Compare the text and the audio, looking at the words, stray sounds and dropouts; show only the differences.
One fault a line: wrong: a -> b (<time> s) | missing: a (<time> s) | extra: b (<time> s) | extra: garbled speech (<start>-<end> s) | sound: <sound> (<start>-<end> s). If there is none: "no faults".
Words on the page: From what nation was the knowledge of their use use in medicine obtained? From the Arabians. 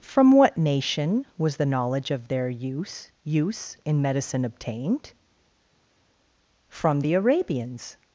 no faults